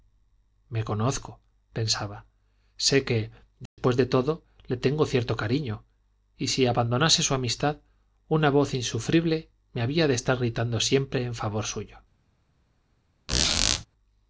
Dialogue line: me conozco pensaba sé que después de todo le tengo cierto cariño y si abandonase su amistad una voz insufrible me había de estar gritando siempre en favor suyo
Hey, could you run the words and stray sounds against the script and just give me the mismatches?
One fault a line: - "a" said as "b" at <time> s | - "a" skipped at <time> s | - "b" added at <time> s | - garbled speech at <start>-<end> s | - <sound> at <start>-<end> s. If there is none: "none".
- dropout at 3.7-3.8 s
- squeak at 13.3-13.9 s